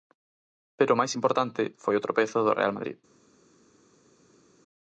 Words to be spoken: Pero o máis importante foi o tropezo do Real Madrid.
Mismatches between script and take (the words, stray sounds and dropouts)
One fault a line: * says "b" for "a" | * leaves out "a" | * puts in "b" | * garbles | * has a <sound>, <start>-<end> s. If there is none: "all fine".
all fine